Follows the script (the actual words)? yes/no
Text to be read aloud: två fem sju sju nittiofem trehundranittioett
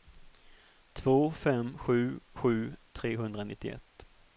no